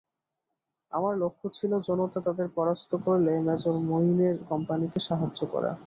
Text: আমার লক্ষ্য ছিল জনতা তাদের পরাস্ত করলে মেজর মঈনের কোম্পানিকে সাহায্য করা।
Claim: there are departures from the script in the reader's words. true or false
false